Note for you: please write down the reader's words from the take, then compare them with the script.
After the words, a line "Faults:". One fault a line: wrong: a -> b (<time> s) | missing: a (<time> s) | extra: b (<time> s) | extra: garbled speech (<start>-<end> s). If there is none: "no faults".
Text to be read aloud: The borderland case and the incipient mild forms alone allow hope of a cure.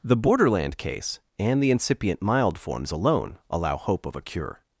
The borderland case and the incipient mild forms alone allow hope of a cure.
Faults:
no faults